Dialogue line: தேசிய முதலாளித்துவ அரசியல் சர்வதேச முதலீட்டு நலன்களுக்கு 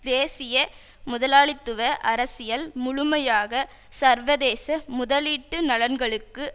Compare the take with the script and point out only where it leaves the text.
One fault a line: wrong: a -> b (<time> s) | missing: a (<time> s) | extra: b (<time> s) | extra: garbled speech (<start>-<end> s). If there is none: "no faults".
extra: முழுமையாக (2.8 s)